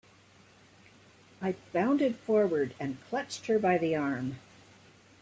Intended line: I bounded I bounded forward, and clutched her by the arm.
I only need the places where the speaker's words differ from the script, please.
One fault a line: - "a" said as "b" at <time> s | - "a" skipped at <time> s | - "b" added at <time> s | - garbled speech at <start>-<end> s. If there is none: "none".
- "I bounded" skipped at 2.1 s